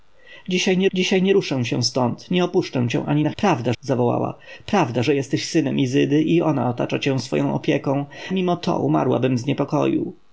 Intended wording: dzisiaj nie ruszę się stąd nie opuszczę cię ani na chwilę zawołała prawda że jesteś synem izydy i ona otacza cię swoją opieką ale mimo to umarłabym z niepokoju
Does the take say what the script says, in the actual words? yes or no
no